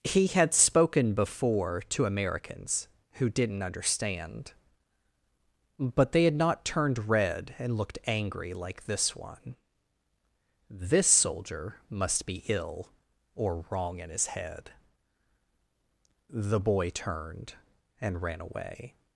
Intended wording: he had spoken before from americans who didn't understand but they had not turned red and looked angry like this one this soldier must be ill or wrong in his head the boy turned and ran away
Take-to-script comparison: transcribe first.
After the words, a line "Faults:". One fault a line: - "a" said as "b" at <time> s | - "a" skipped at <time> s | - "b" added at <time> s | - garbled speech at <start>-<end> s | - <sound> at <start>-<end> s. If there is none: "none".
he had spoken before to americans who didn't understand but they had not turned red and looked angry like this one this soldier must be ill or wrong in his head the boy turned and ran away
Faults:
- "from" said as "to" at 1.9 s